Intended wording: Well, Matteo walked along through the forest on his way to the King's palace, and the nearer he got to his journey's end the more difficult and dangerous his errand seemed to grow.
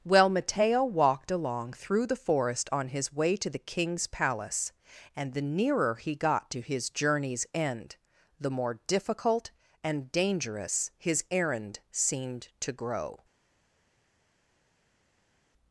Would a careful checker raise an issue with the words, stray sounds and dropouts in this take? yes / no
no